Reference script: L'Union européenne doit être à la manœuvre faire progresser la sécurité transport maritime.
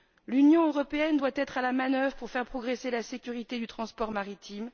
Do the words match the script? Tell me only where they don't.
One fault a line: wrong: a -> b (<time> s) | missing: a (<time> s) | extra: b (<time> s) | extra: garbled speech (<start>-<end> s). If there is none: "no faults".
extra: pour (2.2 s)
extra: du (3.6 s)